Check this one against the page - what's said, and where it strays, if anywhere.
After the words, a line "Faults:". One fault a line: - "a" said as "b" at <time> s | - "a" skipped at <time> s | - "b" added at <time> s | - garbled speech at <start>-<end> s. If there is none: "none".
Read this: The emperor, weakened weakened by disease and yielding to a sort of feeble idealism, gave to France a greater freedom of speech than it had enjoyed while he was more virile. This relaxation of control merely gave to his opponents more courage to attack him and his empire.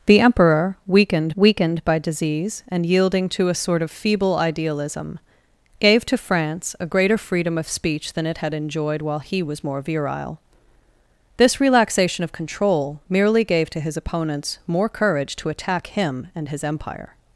The emperor, weakened weakened by disease and yielding to a sort of feeble idealism, gave to France a greater freedom of speech than it had enjoyed while he was more virile. This relaxation of control merely gave to his opponents more courage to attack him and his empire.
Faults:
none